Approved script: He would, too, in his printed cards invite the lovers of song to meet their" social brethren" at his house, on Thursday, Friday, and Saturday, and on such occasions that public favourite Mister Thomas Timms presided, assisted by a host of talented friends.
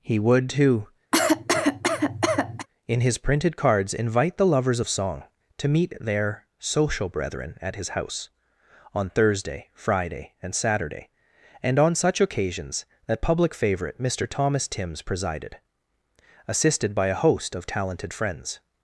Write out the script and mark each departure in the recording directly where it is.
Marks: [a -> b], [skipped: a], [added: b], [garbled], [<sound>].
He would, too, [cough] in his printed cards invite the lovers of song to meet their" social brethren" at his house, on Thursday, Friday, and Saturday, and on such occasions that public favourite Mister Thomas Timms presided, assisted by a host of talented friends.